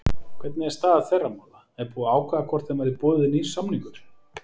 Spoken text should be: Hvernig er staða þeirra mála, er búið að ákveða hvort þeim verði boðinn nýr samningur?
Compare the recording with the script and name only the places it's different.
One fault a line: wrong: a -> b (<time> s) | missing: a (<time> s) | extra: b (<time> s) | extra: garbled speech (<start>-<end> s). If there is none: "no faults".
no faults